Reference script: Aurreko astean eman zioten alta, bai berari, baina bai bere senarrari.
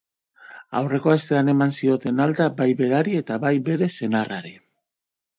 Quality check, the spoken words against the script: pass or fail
fail